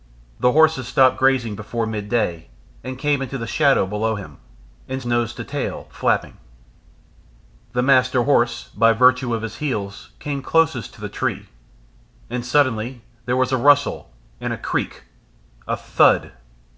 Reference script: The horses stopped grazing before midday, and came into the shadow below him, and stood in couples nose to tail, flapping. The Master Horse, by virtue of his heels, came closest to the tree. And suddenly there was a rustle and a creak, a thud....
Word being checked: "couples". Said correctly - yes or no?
no